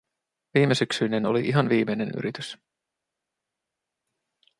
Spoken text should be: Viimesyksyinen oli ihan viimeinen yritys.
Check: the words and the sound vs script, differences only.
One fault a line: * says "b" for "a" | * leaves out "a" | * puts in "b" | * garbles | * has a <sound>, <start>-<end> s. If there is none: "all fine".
all fine